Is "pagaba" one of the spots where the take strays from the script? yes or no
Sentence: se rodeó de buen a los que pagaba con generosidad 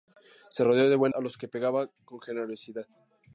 no